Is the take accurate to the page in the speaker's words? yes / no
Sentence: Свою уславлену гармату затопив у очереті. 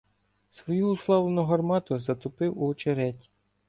yes